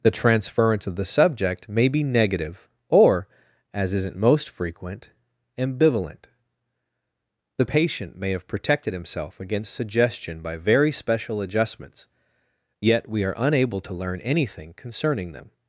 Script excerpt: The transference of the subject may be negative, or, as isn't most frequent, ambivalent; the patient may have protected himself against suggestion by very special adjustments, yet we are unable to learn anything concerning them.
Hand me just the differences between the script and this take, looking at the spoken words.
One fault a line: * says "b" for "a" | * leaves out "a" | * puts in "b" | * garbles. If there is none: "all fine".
all fine